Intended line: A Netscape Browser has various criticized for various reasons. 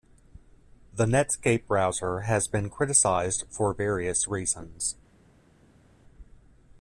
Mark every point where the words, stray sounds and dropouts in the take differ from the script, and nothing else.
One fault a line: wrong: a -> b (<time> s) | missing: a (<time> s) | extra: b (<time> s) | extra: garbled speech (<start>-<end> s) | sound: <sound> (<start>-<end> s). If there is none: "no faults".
wrong: A -> The (0.9 s)
wrong: various -> been (2.5 s)